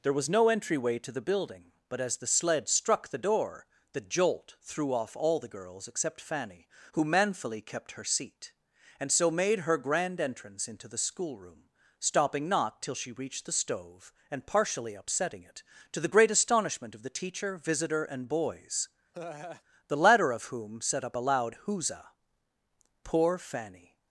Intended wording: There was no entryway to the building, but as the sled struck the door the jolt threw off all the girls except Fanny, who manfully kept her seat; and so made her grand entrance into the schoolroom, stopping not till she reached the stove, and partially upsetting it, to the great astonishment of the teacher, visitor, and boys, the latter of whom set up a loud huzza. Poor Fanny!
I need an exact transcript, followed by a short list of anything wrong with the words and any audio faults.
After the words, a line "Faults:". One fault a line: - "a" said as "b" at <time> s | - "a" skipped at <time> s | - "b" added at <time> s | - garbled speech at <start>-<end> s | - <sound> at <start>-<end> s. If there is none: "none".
There was no entryway to the building, but as the sled struck the door the jolt threw off all the girls except Fanny, who manfully kept her seat; and so made her grand entrance into the schoolroom, stopping not till she reached the stove, and partially upsetting it, to the great astonishment of the teacher, visitor, and boys, the latter of whom set up a loud huzza. Poor Fanny!
Faults:
- laugh at 19.1-19.6 s